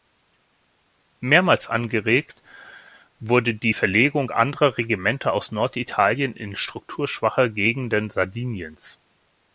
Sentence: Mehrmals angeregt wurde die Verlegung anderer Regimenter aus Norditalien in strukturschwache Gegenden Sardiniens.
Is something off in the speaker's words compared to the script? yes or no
no